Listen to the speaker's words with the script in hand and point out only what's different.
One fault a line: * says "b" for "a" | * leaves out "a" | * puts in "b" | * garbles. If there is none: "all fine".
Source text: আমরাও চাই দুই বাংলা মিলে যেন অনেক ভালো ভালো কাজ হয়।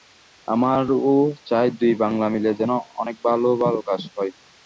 all fine